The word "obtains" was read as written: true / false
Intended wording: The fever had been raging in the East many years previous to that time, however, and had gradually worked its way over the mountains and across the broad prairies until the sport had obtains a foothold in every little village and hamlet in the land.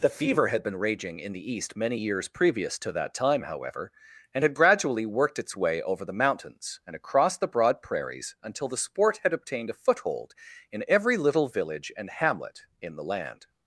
false